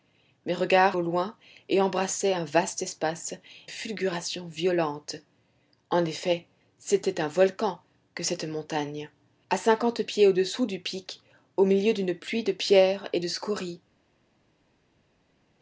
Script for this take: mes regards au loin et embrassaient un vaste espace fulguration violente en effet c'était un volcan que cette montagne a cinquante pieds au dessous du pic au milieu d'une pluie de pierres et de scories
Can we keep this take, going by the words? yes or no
yes